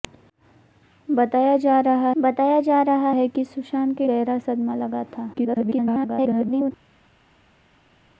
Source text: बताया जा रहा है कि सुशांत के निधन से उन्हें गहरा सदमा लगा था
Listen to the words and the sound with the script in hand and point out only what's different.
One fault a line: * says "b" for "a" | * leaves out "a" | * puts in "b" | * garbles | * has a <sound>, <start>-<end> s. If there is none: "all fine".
* puts in "बताया जा रहा"
* leaves out "निधन से उन्हें"
* garbles